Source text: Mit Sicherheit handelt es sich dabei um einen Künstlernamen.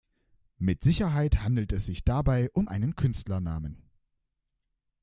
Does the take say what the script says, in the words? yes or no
yes